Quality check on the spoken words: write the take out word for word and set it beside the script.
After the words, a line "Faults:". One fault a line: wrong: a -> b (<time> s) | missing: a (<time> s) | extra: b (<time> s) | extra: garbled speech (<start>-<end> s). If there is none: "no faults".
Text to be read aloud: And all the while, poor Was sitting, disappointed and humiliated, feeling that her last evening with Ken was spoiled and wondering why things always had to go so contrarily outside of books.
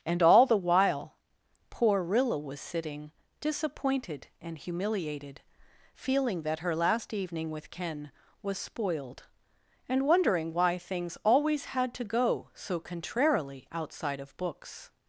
And all the while, poor Rilla was sitting, disappointed and humiliated, feeling that her last evening with Ken was spoiled and wondering why things always had to go so contrarily outside of books.
Faults:
extra: Rilla (2.0 s)